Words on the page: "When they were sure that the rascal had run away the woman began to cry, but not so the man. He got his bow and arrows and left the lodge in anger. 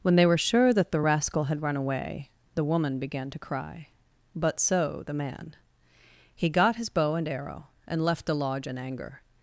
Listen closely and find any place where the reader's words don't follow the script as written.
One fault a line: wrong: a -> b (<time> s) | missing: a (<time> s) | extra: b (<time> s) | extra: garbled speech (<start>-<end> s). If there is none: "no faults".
missing: not (4.6 s)
wrong: arrows -> arrow (7.3 s)